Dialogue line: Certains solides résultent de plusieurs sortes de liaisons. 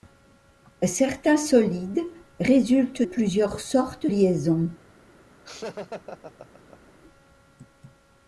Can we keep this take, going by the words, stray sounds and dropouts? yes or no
no